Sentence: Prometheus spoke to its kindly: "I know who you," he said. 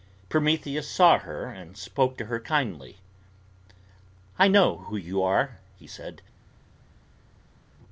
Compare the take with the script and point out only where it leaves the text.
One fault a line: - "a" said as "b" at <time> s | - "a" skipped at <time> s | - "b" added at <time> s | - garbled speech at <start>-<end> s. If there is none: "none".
- "saw her and" added at 0.9 s
- "its" said as "her" at 2.2 s
- "are" added at 5.2 s